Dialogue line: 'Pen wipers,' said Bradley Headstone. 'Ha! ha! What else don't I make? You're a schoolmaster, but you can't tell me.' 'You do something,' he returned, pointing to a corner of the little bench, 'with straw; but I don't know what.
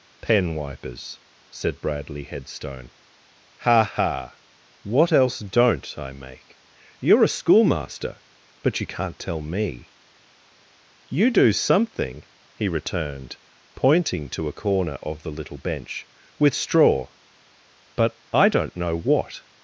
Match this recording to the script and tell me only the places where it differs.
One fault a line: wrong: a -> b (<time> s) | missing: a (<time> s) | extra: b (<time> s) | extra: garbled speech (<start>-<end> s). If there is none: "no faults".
no faults